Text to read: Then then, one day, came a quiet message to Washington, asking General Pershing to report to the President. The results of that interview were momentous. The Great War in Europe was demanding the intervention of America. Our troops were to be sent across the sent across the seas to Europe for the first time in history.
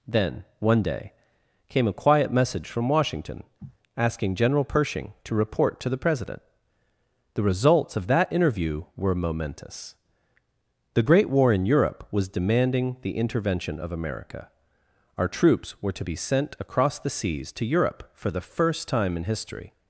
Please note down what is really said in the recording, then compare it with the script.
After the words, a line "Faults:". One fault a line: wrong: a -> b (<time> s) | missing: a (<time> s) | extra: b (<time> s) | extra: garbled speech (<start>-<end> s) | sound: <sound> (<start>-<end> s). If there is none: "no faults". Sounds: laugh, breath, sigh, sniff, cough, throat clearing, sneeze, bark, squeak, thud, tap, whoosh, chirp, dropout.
Then, one day, came a quiet message from Washington, asking General Pershing to report to the President. The results of that interview were momentous. The Great War in Europe was demanding the intervention of America. Our troops were to be sent across the seas to Europe for the first time in history.
Faults:
missing: then (0.5 s)
wrong: to -> from (2.7 s)
sound: sniff (3.6-3.8 s)
missing: sent across the (17.1 s)